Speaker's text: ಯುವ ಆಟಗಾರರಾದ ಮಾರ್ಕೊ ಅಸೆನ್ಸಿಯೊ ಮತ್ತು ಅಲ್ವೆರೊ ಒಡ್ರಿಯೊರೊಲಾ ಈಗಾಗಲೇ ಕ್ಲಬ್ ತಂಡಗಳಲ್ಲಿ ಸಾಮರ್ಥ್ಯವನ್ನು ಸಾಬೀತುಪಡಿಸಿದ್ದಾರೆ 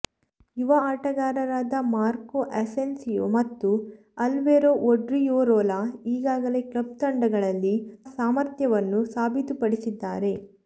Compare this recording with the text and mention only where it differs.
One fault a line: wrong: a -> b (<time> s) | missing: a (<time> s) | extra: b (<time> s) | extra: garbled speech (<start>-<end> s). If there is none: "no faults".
no faults